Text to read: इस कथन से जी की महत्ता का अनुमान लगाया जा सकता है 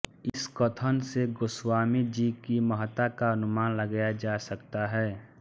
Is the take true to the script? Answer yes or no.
no